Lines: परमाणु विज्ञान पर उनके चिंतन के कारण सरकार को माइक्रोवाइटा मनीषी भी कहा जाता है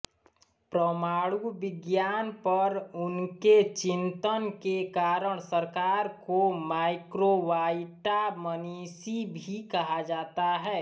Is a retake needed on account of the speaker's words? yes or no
no